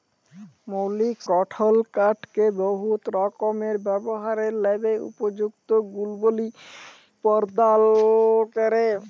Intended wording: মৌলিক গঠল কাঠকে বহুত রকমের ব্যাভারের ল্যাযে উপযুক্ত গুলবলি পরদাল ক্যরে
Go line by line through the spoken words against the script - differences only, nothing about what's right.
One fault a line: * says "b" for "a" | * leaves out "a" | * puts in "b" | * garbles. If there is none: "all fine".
all fine